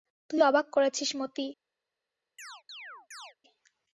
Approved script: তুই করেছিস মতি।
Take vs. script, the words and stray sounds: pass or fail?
fail